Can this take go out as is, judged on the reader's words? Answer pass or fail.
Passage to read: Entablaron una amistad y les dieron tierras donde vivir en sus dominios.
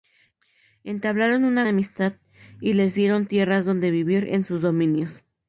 pass